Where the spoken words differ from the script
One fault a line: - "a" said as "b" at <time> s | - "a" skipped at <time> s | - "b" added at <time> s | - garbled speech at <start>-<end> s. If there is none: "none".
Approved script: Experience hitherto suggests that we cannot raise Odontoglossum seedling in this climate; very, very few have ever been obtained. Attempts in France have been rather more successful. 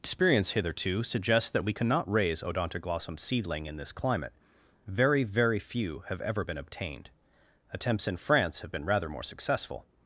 none